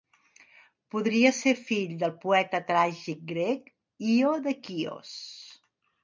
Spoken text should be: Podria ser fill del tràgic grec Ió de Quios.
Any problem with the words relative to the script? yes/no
yes